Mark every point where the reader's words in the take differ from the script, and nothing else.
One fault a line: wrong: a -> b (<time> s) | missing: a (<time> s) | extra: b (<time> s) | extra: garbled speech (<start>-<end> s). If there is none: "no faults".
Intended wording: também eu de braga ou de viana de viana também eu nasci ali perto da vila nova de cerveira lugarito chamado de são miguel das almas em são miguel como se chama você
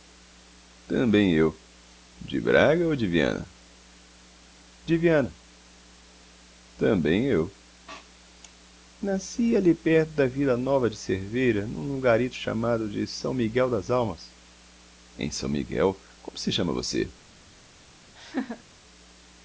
extra: num (11.7 s)